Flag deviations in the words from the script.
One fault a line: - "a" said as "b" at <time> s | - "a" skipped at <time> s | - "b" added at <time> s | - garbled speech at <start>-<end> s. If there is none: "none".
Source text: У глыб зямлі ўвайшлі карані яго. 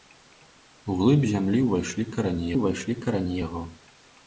- "ўвайшлі карані" added at 2.6 s